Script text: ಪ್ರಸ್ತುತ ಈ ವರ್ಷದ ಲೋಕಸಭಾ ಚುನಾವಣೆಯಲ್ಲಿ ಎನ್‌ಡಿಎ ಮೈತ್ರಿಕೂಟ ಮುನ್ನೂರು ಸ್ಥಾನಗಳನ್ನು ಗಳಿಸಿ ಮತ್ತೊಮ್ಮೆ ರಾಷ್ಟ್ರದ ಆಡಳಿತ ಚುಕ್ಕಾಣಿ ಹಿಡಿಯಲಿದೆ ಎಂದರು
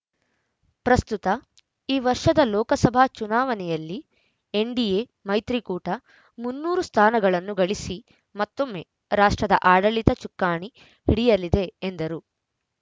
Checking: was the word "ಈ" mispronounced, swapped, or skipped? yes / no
no